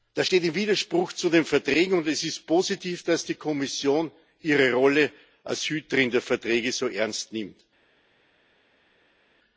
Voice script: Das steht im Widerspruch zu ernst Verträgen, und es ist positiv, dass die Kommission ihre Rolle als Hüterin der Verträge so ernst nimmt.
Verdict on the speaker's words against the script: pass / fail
fail